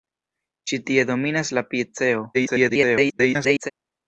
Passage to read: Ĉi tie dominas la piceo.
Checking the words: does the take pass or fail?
fail